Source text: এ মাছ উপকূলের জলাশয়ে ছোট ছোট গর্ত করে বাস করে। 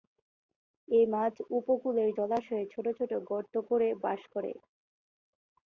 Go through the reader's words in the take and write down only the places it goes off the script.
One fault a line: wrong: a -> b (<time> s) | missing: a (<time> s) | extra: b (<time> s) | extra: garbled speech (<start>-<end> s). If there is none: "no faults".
no faults